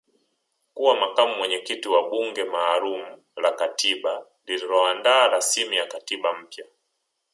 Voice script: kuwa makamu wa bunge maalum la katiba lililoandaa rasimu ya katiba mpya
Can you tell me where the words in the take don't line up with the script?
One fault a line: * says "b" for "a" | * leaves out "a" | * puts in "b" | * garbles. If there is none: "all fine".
* puts in "mwenyekiti"